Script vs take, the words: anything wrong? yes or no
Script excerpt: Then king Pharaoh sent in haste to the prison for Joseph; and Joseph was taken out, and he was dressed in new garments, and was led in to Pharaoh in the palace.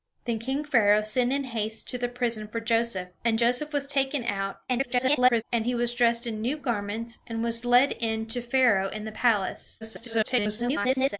yes